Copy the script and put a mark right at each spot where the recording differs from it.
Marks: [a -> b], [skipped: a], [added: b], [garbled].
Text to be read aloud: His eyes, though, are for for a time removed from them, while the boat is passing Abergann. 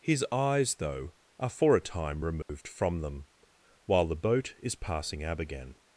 His eyes, though, are for [skipped: for] a time removed from them, while the boat is passing Abergann.